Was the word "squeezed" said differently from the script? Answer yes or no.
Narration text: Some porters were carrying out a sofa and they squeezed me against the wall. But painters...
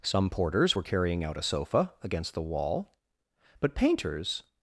yes